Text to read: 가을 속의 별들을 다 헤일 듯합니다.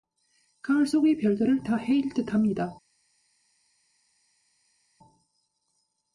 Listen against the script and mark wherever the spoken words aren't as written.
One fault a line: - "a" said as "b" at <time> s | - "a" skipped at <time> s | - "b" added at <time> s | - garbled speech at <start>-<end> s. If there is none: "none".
none